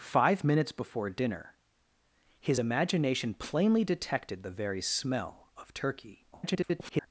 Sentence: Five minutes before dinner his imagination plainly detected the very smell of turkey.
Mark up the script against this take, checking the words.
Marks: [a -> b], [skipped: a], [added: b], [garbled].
Five minutes before dinner his imagination plainly detected the very smell of turkey. [garbled]